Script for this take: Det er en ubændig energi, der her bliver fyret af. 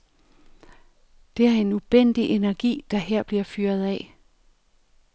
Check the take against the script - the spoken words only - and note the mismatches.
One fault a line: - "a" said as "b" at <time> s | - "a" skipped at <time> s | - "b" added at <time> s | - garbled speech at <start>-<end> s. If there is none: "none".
none